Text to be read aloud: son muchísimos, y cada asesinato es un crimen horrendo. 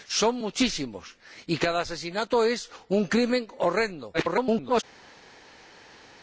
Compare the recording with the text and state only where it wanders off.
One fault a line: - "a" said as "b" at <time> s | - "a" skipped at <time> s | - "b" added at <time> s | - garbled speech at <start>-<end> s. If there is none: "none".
- garbled speech at 4.1-4.8 s